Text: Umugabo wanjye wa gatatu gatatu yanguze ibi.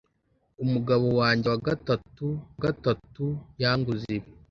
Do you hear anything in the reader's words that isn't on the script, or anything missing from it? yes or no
no